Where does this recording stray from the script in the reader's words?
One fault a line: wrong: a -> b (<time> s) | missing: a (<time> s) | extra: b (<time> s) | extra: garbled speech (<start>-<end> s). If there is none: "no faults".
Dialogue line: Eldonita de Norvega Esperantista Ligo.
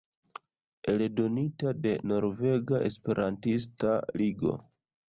no faults